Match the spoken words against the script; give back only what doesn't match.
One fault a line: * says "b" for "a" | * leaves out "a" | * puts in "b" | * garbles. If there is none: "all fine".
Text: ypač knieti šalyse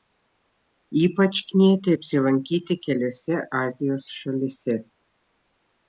* puts in "apsilankyti keliose azijos"